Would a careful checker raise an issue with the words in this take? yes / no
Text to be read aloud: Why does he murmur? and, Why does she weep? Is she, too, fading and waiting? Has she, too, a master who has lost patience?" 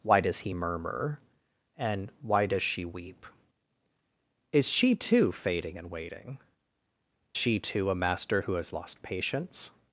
yes